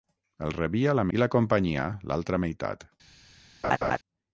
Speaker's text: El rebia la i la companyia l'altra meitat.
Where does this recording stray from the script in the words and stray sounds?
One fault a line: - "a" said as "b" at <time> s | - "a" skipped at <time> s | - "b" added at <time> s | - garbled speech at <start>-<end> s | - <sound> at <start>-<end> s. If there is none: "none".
- laugh at 3.6-4.0 s